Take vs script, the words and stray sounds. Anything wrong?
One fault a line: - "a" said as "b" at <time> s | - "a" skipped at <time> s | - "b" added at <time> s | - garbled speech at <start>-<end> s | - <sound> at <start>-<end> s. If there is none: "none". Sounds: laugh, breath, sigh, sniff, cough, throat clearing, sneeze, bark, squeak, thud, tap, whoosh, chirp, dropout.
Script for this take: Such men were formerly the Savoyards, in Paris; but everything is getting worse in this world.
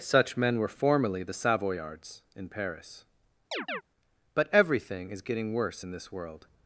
- chirp at 3.5-3.8 s